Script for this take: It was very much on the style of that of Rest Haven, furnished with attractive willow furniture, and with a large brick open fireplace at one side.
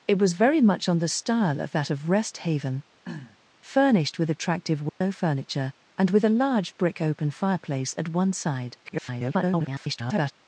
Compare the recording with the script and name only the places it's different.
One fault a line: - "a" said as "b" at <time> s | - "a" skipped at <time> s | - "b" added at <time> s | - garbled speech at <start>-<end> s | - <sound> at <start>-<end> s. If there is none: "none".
- throat clearing at 3.0-3.4 s
- dropout at 4.9-5.0 s
- garbled speech at 8.8-10.3 s